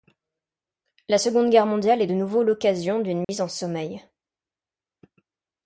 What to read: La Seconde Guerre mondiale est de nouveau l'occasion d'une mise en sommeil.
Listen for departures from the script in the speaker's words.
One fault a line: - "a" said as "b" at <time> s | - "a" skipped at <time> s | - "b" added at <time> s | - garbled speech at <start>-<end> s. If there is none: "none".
none